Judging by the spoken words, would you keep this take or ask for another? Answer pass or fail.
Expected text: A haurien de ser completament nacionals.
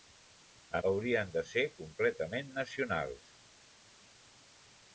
pass